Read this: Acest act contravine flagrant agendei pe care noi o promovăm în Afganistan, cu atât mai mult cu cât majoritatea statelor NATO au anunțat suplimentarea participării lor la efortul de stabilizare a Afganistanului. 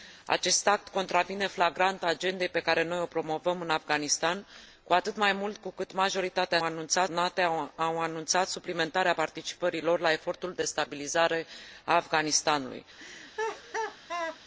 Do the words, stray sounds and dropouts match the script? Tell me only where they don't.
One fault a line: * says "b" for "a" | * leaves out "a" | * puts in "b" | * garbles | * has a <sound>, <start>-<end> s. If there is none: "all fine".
* says "anunțat" for "statelor"
* has a laugh, 13.0-14.4 s